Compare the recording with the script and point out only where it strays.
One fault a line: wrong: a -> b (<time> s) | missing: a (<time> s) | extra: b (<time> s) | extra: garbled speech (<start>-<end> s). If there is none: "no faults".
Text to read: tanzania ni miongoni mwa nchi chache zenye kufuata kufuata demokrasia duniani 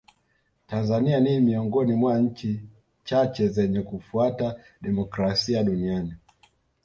missing: kufuata (4.6 s)